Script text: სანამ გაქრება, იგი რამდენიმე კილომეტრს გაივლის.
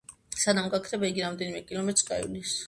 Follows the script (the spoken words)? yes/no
yes